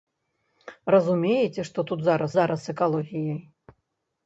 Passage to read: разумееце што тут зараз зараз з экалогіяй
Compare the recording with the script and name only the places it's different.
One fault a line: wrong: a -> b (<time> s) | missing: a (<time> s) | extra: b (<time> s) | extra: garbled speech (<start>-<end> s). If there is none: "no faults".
no faults